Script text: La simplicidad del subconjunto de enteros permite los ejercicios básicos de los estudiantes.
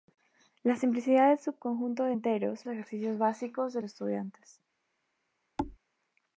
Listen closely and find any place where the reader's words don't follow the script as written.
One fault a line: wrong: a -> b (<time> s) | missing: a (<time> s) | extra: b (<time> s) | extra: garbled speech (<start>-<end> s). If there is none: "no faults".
missing: permite los (2.6 s)
missing: los (3.8 s)